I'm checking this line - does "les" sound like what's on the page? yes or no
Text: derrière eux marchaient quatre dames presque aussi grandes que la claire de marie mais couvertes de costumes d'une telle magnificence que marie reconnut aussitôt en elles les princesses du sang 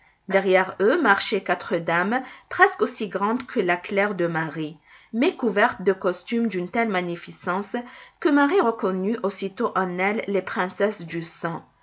yes